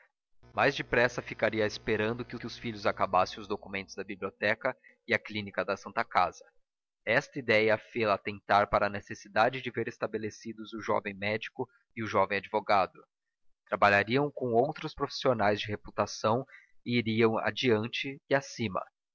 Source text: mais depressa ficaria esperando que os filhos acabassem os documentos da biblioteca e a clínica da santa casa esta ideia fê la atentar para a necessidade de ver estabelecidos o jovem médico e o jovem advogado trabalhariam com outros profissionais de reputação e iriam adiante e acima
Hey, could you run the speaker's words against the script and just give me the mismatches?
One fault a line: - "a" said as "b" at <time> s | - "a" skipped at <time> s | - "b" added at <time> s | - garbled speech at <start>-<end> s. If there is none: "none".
- "que" added at 2.4 s